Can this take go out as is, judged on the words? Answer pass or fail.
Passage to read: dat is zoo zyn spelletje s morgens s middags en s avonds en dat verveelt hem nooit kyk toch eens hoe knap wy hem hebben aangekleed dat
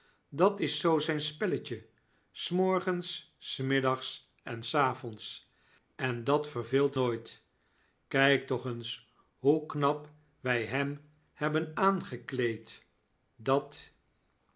fail